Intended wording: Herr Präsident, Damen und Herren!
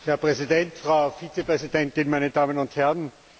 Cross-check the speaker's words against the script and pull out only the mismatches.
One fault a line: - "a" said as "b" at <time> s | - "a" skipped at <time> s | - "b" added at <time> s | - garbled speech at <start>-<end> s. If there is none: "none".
- "Frau Vizepräsidentin meine" added at 0.8 s